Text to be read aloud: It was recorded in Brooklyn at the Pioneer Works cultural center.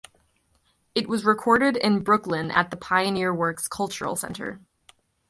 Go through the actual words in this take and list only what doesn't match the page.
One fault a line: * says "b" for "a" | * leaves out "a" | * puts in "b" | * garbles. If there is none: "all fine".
all fine